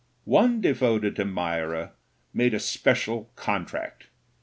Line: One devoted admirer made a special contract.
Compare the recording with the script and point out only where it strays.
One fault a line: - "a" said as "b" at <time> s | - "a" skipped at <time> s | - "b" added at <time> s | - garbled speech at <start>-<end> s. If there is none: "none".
none